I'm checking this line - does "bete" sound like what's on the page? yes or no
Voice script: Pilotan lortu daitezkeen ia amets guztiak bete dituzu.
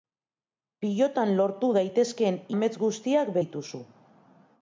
no